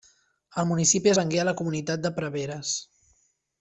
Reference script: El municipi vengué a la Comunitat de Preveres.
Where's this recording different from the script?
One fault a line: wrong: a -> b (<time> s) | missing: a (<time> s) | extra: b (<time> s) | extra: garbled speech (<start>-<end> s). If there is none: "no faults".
no faults